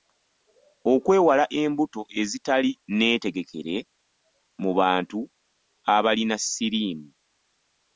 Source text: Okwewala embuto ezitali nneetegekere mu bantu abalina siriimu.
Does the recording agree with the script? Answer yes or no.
yes